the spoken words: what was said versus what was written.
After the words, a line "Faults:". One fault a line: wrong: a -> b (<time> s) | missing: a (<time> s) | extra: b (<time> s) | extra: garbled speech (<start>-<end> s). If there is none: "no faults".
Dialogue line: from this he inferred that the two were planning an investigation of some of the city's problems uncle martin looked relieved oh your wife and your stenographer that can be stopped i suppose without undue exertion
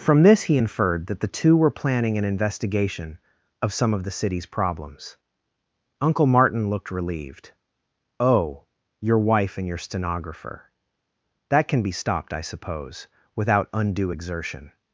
from this he inferred that the two were planning an investigation of some of the city's problems uncle martin looked relieved oh your wife and your stenographer that can be stopped i suppose without undue exertion
Faults:
no faults